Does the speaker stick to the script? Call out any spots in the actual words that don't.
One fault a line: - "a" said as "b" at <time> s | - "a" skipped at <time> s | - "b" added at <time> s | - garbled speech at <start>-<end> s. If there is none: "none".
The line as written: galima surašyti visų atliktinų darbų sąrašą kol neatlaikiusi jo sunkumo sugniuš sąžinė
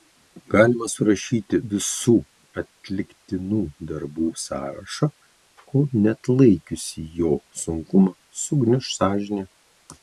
none